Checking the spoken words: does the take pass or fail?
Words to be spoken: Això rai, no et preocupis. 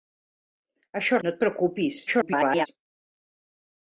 fail